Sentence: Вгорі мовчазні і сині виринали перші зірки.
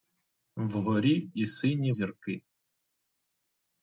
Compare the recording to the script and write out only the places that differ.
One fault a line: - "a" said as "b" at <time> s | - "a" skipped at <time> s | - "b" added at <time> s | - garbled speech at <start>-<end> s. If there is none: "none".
- "мовчазні" skipped at 1.3 s
- "виринали перші" skipped at 1.9 s